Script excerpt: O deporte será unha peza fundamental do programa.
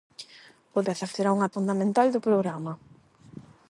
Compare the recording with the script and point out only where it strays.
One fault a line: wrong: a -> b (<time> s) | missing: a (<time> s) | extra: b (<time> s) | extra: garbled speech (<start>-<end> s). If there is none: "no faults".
wrong: deporte -> peza (0.9 s)
missing: peza (1.5 s)